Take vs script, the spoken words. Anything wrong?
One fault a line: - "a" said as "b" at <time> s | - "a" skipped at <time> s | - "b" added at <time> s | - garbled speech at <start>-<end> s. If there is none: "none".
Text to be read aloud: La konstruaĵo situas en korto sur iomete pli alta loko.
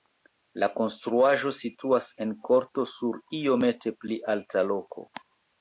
none